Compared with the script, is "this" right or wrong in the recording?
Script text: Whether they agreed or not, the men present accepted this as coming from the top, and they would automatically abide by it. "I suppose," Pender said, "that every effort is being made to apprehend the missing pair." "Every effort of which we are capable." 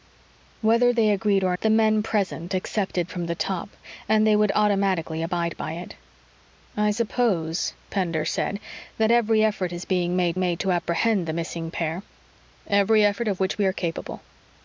wrong